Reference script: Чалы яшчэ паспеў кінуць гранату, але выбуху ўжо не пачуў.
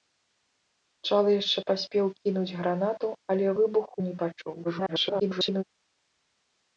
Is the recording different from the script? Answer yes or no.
yes